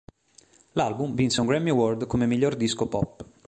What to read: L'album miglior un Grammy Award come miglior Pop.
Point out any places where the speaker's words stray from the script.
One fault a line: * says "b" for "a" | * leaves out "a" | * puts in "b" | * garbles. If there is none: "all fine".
* says "vinse" for "miglior"
* puts in "disco"